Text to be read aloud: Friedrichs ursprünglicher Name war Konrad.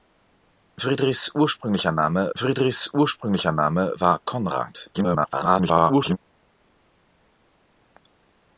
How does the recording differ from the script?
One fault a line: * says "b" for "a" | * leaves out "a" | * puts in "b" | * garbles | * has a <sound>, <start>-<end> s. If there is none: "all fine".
* puts in "friedrichs ursprünglicher Name"
* garbles